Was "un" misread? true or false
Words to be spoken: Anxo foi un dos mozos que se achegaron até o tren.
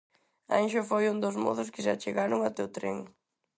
false